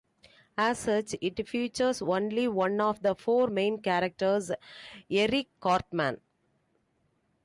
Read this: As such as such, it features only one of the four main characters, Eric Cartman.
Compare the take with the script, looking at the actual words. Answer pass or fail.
fail